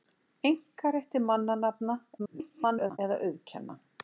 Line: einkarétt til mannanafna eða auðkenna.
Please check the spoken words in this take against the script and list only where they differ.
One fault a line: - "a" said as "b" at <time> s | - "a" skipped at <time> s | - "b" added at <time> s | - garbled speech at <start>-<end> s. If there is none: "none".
- garbled speech at 2.2-3.0 s